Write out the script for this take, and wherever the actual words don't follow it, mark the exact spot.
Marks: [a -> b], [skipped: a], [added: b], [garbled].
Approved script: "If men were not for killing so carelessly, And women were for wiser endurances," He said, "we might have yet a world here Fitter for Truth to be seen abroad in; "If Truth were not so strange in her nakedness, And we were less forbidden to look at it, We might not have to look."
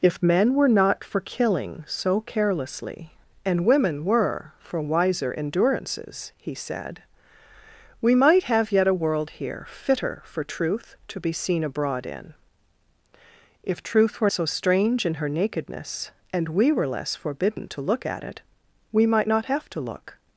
"If men were not for killing so carelessly, And women were for wiser endurances," He said, "we might have yet a world here Fitter for Truth to be seen abroad in; "If Truth were [skipped: not] so strange in her nakedness, And we were less forbidden to look at it, We might not have to look."